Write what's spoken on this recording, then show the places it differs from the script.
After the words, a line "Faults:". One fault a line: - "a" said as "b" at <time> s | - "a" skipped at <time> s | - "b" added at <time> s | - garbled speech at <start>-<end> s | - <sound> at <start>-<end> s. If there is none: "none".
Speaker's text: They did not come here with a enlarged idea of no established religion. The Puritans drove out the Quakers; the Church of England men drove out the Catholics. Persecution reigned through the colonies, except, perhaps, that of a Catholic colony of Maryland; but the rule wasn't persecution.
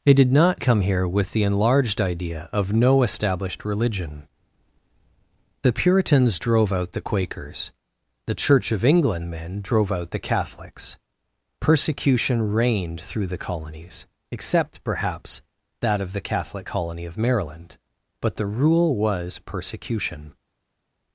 They did not come here with the enlarged idea of no established religion. The Puritans drove out the Quakers; the Church of England men drove out the Catholics. Persecution reigned through the colonies, except, perhaps, that of the Catholic colony of Maryland; but the rule was persecution.
Faults:
- "a" said as "the" at 1.3 s
- "a" said as "the" at 16.1 s
- "wasn't" said as "was" at 18.9 s